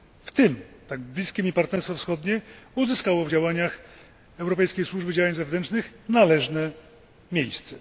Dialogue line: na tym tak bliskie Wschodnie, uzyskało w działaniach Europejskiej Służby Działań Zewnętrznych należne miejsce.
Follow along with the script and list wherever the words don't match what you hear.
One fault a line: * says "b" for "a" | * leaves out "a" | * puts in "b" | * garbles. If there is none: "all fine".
* says "w" for "na"
* puts in "mi Partnerstwo"